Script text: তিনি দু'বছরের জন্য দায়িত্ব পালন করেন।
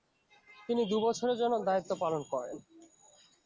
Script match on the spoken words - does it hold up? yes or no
yes